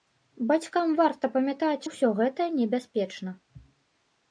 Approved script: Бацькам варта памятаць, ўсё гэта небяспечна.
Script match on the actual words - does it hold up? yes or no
yes